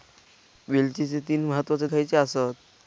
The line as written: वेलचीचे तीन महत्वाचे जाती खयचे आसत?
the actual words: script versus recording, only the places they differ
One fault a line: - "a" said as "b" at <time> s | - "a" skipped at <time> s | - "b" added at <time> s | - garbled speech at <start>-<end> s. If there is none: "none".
- "जाती" skipped at 1.9 s